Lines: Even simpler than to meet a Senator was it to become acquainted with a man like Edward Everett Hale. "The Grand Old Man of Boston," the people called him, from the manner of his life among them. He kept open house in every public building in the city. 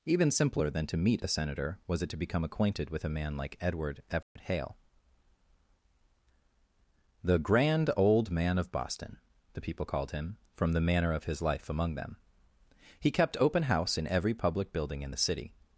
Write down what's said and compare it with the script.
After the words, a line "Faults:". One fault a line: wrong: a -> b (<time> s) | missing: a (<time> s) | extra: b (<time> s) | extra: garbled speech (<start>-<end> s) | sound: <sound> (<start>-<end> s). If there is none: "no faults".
Even simpler than to meet a Senator was it to become acquainted with a man like Edward Everett Hale. "The Grand Old Man of Boston," the people called him, from the manner of his life among them. He kept open house in every public building in the city.
Faults:
sound: dropout (4.2-4.4 s)